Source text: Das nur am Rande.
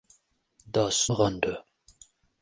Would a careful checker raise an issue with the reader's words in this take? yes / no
yes